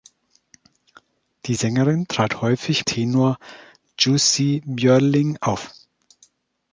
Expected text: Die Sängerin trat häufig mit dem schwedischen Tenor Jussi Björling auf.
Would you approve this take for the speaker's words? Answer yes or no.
no